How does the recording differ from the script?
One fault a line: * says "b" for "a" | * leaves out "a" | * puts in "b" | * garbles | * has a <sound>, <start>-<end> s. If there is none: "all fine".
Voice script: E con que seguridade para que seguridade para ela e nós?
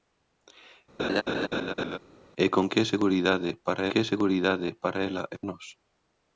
* has a laugh, 1.0-2.0 s